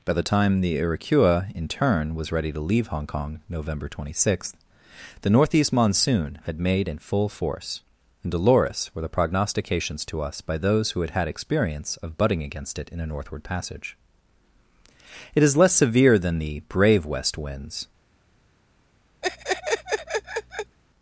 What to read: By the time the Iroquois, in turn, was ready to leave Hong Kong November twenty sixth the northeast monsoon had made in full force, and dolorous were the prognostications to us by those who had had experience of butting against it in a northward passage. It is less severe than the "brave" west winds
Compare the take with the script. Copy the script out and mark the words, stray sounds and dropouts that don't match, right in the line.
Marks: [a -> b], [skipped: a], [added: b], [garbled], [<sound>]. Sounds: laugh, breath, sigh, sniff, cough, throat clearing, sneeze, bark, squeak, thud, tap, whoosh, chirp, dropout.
By the time the Iroquois, in turn, was ready to leave Hong Kong November twenty sixth the northeast monsoon had made in full force, and dolorous were the prognostications to us by those who had had experience of butting against it in a northward passage. It is less severe than the "brave" west winds [laugh]